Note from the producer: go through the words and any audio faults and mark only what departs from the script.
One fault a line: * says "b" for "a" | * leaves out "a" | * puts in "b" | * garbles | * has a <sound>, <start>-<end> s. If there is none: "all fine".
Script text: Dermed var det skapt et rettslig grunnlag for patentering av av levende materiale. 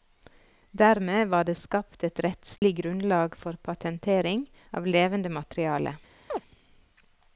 * has a dropout, 2.6-2.6 s
* leaves out "av"
* has a chirp, 6.3-6.4 s